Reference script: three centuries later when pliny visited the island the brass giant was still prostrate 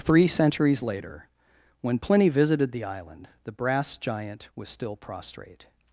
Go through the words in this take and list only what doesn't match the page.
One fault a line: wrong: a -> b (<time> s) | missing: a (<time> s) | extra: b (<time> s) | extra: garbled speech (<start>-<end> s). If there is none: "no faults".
no faults